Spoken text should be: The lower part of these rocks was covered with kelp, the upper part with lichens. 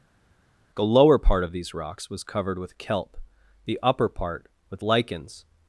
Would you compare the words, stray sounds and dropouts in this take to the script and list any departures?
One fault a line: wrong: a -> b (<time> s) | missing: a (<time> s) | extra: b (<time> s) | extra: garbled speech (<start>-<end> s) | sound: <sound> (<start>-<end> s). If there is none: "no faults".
no faults